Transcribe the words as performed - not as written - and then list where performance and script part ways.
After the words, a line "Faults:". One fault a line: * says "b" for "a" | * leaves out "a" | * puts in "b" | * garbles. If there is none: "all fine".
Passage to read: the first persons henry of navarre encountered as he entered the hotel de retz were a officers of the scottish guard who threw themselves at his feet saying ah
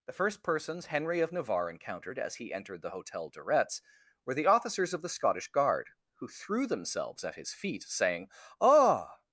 the first persons henry of navarre encountered as he entered the hotel de retz were the officers of the scottish guard who threw themselves at his feet saying ah
Faults:
* says "the" for "a"